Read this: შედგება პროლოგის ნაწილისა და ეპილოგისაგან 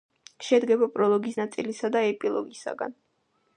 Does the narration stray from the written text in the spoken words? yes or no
no